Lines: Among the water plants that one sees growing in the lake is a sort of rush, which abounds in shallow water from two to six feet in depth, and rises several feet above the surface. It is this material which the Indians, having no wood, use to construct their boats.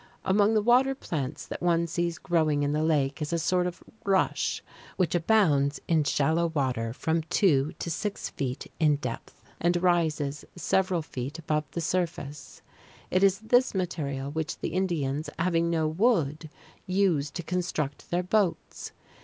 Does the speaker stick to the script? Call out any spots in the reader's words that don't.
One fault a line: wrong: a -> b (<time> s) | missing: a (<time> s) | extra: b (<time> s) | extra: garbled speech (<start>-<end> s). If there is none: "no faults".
no faults